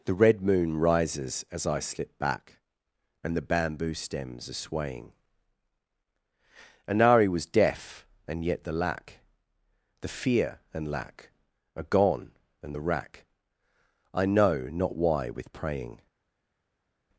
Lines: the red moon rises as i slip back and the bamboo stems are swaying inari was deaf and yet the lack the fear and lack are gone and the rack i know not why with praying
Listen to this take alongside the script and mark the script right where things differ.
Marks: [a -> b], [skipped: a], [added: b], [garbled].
the red moon rises as i slip back and the bamboo stems are swaying inari was deaf and yet the lack the fear and lack are gone and the rack i know not why with praying